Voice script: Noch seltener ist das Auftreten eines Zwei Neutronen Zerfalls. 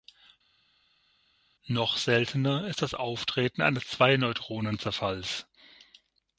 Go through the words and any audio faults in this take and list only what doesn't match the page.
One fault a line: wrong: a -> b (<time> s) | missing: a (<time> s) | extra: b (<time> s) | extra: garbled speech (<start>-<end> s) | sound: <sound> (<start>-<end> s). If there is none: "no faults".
no faults